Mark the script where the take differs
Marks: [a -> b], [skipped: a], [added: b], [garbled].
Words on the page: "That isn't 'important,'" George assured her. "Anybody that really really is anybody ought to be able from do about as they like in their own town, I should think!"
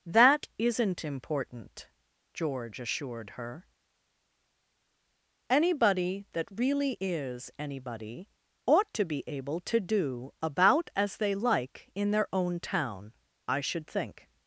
"That isn't 'important,'" George assured her. "Anybody that really [skipped: really] is anybody ought to be able [from -> to] do about as they like in their own town, I should think!"